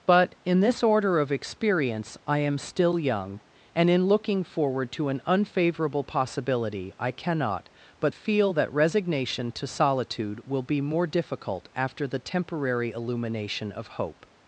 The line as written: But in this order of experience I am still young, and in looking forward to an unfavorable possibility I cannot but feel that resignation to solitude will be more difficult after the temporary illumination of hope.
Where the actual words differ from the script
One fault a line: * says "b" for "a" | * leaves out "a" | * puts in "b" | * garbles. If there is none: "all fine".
all fine